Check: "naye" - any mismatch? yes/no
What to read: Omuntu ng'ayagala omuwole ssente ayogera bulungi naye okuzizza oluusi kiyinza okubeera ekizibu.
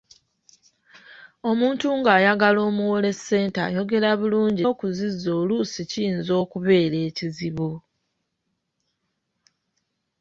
yes